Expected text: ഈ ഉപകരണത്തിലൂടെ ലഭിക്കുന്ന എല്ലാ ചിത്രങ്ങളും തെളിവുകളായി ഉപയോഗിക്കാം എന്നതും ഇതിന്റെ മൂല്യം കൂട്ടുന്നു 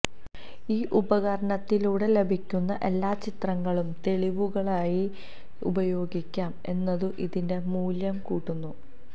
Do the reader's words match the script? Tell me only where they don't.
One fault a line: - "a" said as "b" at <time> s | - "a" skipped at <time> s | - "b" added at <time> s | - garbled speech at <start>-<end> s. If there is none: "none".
none